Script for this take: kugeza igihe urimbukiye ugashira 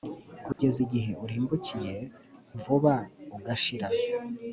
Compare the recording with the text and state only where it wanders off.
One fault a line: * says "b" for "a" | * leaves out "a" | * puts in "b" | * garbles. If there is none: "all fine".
* puts in "vuba"